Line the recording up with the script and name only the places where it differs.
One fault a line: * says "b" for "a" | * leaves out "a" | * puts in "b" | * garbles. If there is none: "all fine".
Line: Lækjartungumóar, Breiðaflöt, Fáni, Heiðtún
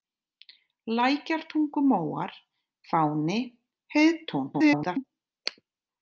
* leaves out "Breiðaflöt"
* garbles